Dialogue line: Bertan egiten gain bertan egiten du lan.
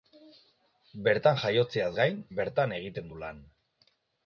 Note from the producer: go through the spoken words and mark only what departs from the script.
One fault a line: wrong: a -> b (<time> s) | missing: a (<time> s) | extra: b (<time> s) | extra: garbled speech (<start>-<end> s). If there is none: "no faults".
wrong: egiten -> jaiotzeaz (1.4 s)